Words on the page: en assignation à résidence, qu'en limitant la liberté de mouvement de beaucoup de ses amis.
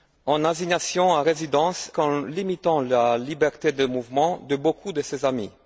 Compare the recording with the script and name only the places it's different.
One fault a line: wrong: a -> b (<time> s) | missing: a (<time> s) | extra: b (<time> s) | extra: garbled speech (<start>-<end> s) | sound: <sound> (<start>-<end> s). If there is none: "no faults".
no faults